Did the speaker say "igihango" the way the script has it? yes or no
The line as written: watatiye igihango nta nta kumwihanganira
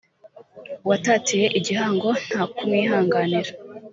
yes